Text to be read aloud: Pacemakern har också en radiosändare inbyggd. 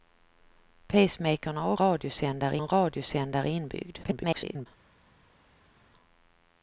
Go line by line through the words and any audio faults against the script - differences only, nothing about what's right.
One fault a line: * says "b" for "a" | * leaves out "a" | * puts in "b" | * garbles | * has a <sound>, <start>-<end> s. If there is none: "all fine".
* says "radiosändare" for "också"
* garbles